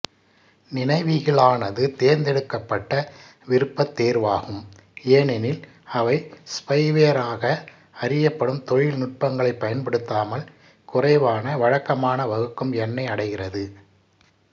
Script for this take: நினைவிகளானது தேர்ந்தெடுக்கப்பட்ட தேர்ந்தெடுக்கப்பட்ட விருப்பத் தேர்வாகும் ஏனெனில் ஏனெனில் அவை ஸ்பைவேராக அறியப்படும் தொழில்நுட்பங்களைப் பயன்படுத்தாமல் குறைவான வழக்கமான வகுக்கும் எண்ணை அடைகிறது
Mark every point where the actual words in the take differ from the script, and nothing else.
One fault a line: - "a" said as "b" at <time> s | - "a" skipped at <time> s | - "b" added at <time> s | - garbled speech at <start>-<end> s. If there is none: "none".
- "தேர்ந்தெடுக்கப்பட்ட" skipped at 2.9 s
- "ஏனெனில்" skipped at 5.6 s